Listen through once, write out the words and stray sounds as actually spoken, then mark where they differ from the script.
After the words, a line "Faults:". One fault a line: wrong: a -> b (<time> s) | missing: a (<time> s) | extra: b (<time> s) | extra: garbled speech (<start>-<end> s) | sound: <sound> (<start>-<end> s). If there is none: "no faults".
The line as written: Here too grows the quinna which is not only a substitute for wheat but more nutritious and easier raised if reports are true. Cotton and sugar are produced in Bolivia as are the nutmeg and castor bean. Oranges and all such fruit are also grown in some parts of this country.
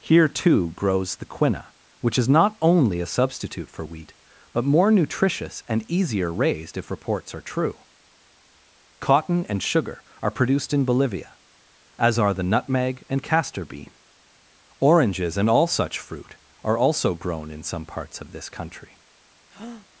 Here too grows the quinna which is not only a substitute for wheat but more nutritious and easier raised if reports are true. Cotton and sugar are produced in Bolivia as are the nutmeg and castor bean. Oranges and all such fruit are also grown in some parts of this country.
Faults:
sound: breath (19.5-19.9 s)